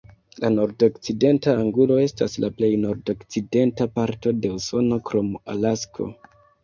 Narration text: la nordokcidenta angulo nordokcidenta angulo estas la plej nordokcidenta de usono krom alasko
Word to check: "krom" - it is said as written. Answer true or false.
true